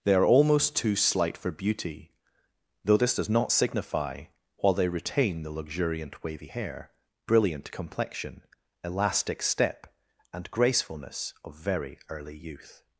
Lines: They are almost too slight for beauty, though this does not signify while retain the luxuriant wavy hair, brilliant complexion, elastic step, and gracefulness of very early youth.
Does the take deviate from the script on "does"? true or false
false